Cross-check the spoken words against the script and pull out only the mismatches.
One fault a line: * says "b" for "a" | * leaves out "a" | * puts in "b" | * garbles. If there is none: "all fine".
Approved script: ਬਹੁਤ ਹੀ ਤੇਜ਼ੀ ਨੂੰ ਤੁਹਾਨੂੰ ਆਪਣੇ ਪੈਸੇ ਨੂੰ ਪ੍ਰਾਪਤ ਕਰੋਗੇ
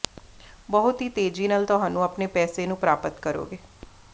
* says "ਨਾਲ" for "ਨੂੰ"